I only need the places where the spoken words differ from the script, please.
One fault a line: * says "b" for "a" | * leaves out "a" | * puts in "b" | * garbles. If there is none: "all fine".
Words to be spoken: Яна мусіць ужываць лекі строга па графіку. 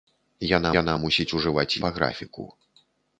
* puts in "яна"
* leaves out "лекі строга"